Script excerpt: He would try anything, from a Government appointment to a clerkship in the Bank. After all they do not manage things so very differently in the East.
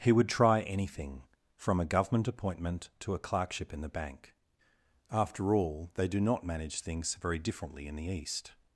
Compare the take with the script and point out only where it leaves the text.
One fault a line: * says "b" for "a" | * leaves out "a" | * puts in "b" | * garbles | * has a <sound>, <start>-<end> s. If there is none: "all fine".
* leaves out "so"